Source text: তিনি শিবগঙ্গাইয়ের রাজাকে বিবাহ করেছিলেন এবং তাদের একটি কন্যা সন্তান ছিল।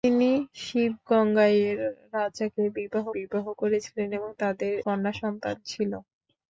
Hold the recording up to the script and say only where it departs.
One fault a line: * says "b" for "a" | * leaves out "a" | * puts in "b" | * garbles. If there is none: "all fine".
* puts in "বিবাহ"
* leaves out "একটি"